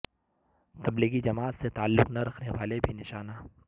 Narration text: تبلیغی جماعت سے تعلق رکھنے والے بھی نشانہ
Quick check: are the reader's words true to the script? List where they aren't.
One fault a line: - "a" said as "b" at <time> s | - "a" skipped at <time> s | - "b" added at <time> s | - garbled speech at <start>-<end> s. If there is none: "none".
- "نہ" added at 2.1 s